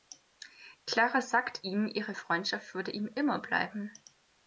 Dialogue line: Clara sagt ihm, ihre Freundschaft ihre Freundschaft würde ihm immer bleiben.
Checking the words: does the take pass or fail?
fail